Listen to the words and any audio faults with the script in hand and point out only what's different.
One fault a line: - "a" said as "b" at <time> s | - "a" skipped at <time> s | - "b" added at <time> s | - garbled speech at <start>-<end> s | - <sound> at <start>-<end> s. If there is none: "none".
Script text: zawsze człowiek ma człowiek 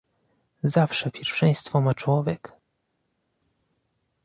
- "człowiek" said as "pierwszeństwo" at 1.1 s